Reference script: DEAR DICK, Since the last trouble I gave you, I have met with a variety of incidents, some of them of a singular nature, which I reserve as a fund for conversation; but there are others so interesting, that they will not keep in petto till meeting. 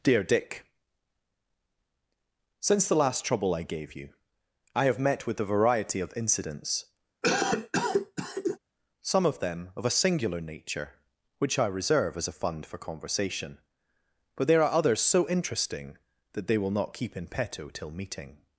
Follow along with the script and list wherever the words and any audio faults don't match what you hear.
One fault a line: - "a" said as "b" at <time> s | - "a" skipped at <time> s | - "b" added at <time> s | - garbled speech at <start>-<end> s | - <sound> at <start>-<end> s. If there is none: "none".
- cough at 7.2-8.6 s